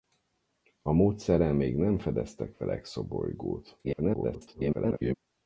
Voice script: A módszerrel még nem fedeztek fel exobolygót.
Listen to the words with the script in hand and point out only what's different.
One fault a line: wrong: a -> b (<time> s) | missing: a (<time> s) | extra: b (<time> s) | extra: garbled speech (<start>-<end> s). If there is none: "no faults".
extra: garbled speech (3.8-5.1 s)